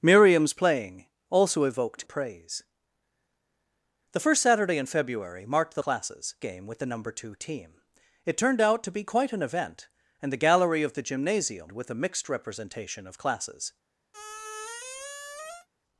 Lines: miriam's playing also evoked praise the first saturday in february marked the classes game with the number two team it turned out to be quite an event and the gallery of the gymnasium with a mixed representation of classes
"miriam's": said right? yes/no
yes